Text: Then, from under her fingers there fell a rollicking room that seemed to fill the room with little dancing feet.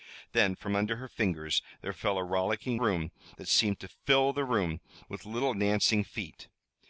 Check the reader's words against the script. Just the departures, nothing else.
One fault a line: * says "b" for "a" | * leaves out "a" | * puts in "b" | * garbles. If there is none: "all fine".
all fine